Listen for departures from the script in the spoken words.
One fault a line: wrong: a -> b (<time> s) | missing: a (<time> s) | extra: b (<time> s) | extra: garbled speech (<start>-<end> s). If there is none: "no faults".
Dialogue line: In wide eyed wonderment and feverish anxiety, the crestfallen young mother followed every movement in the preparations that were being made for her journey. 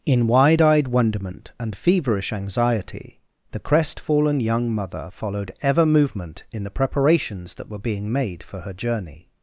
wrong: every -> ever (5.6 s)